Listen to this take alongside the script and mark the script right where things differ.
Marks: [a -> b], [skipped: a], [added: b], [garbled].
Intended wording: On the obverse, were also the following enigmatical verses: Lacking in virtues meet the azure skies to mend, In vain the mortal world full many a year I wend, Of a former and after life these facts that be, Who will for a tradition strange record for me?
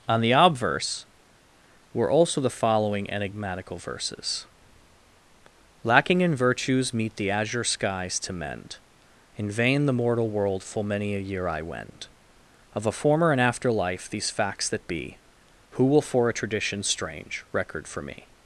On the obverse, were also the following enigmatical verses: Lacking in virtues meet the azure skies to mend, In vain the mortal world full many a year I wend, Of a former and after life these facts that be, Who will for a tradition strange record for me?